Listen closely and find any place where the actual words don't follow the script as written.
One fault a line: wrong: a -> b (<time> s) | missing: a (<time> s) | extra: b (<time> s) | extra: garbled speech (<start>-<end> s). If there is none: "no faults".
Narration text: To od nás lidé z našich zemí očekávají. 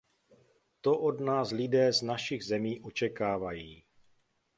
no faults